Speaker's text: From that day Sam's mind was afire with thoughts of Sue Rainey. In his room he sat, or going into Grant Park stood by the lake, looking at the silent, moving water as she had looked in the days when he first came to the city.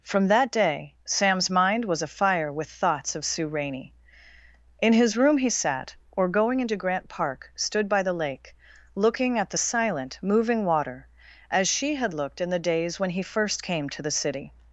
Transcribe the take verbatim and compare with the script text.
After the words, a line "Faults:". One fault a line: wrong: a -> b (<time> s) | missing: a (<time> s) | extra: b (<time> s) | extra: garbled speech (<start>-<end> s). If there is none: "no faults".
From that day Sam's mind was afire with thoughts of Sue Rainey. In his room he sat, or going into Grant Park stood by the lake, looking at the silent, moving water as she had looked in the days when he first came to the city.
Faults:
no faults